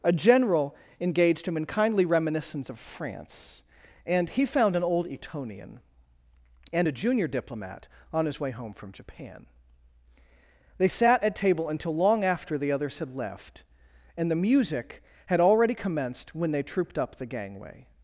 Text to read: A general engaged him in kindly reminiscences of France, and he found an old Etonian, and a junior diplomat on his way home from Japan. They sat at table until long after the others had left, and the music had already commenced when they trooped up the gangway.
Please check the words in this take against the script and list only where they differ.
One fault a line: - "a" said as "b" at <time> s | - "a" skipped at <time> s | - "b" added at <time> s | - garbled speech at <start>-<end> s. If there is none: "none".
- "reminiscences" said as "reminiscence" at 2.0 s